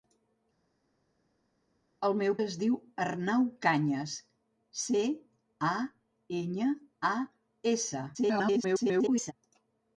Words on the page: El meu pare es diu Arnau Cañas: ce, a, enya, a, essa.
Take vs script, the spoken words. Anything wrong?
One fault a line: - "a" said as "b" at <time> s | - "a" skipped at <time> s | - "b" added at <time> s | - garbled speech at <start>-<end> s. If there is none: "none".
- "pare" skipped at 2.3 s
- garbled speech at 8.1-9.3 s